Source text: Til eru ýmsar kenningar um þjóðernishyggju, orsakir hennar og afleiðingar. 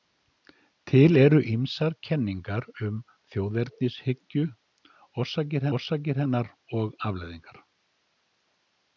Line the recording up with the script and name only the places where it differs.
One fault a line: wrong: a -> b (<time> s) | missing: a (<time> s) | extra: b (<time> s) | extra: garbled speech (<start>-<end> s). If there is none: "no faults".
extra: orsakir (5.8 s)